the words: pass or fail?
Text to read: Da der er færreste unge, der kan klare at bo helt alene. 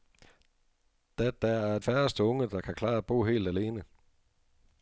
pass